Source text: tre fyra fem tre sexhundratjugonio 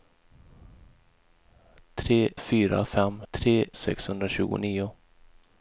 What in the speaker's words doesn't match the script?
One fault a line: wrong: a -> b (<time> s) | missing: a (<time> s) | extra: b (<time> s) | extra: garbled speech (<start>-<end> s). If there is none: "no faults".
no faults